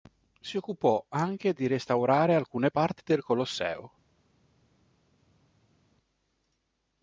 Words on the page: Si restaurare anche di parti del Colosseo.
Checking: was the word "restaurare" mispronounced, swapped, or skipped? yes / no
yes